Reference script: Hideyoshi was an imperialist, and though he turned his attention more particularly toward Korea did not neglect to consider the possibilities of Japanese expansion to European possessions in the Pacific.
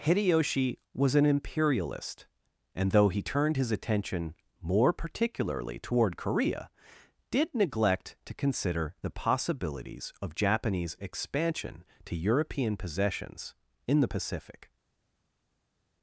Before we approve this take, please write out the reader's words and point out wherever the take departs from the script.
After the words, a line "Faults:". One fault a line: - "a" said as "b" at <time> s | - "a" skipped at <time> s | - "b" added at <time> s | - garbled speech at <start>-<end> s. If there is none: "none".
Hideyoshi was an imperialist, and though he turned his attention more particularly toward Korea did neglect to consider the possibilities of Japanese expansion to European possessions in the Pacific.
Faults:
- "not" skipped at 7.5 s